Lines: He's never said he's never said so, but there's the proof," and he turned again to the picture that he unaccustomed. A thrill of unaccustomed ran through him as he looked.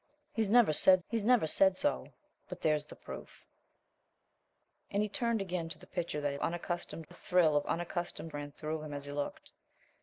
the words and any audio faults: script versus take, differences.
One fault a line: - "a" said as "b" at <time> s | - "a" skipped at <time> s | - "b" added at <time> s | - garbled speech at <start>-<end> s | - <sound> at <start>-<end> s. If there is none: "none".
none